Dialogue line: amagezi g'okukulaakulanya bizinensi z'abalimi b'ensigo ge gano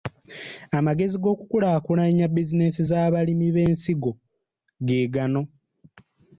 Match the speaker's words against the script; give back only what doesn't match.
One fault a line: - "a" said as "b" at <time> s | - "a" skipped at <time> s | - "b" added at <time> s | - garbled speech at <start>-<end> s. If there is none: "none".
none